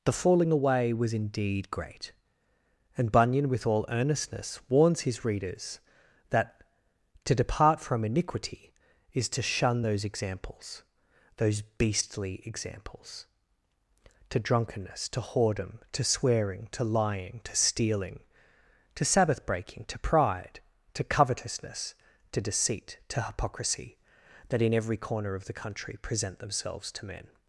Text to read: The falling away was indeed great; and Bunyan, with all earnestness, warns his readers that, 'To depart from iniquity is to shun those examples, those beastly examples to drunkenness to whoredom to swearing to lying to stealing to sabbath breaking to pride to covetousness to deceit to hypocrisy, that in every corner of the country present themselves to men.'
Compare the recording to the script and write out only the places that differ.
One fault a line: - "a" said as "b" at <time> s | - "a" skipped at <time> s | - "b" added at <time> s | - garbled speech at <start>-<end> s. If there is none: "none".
none